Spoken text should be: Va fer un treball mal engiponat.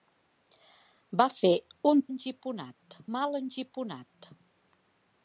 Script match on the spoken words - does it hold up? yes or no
no